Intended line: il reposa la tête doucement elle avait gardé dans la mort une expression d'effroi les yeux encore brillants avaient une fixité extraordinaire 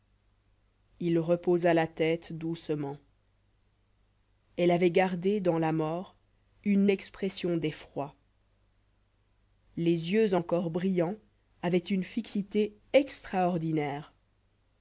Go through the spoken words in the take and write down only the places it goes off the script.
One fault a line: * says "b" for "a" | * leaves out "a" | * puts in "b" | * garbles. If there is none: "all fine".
all fine